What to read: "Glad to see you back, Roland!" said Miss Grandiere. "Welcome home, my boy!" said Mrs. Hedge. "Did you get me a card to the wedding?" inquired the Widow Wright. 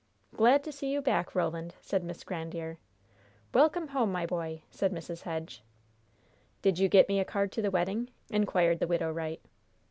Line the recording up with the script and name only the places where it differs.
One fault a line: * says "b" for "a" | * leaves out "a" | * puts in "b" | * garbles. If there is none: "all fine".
all fine